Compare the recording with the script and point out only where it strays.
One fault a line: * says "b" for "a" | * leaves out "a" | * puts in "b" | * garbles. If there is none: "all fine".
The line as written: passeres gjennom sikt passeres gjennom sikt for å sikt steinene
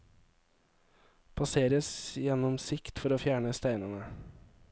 * leaves out "passeres gjennom sikt"
* says "fjerne" for "sikt"